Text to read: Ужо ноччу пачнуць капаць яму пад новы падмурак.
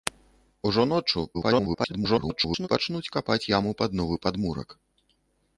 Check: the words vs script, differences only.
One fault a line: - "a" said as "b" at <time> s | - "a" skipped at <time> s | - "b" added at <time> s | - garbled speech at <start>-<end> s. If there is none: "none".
- garbled speech at 1.3-2.7 s